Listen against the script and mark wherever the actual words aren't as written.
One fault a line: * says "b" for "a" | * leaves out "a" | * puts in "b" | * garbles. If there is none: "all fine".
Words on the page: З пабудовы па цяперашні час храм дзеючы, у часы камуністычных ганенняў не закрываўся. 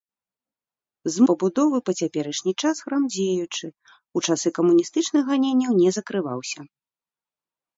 all fine